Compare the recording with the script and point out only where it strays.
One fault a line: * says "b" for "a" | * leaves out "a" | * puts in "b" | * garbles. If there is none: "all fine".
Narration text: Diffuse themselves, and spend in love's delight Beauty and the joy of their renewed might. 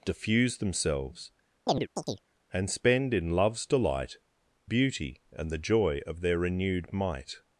all fine